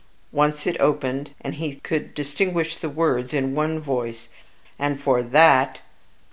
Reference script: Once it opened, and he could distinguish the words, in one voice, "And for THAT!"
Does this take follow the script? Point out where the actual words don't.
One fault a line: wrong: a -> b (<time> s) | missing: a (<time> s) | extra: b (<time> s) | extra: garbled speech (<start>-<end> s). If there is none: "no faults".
no faults